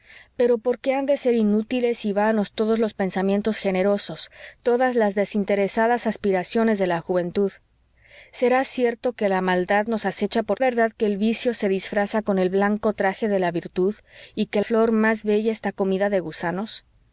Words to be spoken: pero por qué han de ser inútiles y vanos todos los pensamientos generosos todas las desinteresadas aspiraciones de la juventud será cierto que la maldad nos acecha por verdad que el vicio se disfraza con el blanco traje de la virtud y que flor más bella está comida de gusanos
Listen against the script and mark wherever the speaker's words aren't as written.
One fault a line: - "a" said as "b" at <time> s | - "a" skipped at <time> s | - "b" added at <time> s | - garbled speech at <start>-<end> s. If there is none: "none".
none